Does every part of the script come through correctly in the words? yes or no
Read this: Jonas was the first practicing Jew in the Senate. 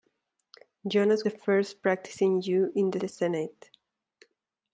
no